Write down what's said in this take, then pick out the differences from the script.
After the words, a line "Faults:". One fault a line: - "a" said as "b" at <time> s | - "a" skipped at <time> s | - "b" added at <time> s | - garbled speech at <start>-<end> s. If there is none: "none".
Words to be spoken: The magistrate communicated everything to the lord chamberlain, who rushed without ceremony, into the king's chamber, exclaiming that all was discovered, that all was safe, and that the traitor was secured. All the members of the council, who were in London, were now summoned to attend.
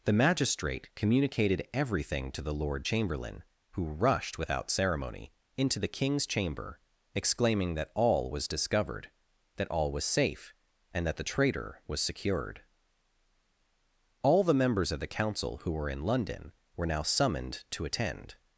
The magistrate communicated everything to the lord chamberlain, who rushed without ceremony, into the king's chamber, exclaiming that all was discovered, that all was safe, and that the traitor was secured. All the members of the council, who were in London, were now summoned to attend.
Faults:
none